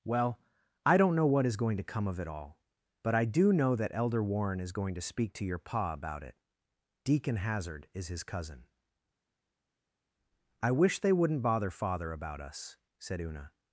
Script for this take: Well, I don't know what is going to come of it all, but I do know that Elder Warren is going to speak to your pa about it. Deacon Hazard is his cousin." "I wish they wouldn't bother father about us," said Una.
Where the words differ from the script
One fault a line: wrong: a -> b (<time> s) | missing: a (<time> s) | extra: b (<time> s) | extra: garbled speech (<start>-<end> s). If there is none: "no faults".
no faults